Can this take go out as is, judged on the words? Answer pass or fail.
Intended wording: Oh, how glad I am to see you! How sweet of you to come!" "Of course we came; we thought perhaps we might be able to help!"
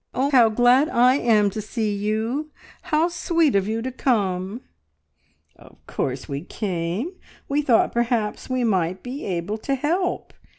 pass